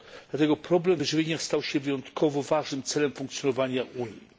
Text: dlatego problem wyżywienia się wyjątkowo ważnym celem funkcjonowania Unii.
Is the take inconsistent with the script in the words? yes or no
yes